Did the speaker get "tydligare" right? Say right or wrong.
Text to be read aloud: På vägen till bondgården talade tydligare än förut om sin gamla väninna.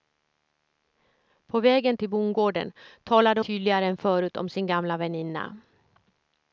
right